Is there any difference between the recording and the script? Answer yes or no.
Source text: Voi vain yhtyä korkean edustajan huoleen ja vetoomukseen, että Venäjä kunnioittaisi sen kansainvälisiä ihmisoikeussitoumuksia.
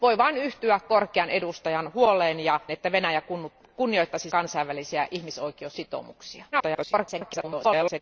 yes